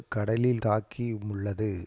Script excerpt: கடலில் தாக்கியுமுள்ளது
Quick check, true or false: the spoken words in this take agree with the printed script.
true